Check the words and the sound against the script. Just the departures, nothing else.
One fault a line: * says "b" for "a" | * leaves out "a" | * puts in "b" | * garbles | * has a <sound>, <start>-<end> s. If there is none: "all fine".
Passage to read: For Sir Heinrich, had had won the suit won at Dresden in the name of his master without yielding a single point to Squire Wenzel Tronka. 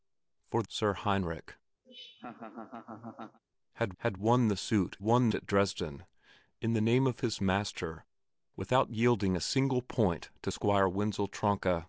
* has a laugh, 1.8-3.4 s